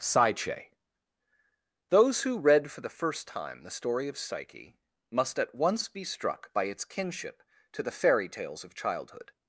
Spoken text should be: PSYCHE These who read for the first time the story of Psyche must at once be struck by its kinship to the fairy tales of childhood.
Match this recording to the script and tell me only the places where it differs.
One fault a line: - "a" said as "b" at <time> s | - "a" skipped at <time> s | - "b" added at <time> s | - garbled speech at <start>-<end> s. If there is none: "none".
- "These" said as "Those" at 1.9 s